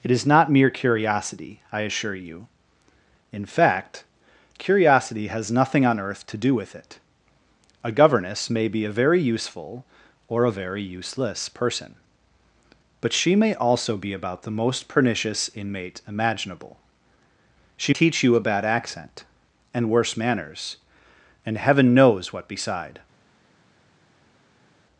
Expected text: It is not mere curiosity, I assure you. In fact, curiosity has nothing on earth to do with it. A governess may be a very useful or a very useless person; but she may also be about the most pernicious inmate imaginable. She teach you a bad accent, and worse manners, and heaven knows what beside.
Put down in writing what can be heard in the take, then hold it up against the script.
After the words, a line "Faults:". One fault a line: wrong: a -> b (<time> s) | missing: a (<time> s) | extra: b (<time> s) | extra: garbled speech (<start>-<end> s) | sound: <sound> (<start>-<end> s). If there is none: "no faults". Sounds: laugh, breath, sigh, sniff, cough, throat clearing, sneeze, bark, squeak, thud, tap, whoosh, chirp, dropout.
It is not mere curiosity, I assure you. In fact, curiosity has nothing on earth to do with it. A governess may be a very useful or a very useless person; but she may also be about the most pernicious inmate imaginable. She teach you a bad accent, and worse manners, and heaven knows what beside.
Faults:
no faults